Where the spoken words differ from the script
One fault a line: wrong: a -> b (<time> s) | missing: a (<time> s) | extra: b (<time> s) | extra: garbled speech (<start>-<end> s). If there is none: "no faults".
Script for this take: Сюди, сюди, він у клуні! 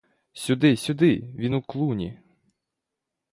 no faults